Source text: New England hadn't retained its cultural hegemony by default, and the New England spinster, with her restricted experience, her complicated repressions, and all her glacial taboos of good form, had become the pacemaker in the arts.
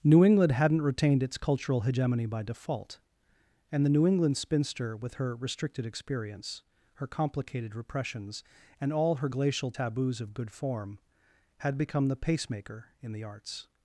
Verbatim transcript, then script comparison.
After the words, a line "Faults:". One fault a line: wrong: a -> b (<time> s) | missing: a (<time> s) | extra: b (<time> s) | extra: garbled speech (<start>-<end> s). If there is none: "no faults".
New England hadn't retained its cultural hegemony by default, and the New England spinster, with her restricted experience, her complicated repressions, and all her glacial taboos of good form, had become the pacemaker in the arts.
Faults:
no faults